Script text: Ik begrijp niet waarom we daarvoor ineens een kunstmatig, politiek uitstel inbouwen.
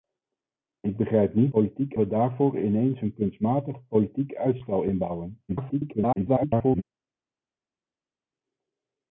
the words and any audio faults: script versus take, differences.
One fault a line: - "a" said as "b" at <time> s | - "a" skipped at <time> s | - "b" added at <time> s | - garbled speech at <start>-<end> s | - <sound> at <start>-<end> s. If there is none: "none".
- "waarom" said as "politiek" at 1.5 s
- garbled speech at 5.5-6.8 s